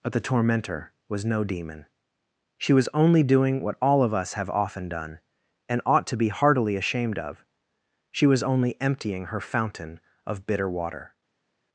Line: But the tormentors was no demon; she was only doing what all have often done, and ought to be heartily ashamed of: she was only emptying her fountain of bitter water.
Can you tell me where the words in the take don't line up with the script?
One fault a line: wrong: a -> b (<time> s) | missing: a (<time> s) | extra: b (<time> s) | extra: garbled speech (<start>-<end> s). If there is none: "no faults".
wrong: tormentors -> tormentor (0.2 s)
extra: of us (4.0 s)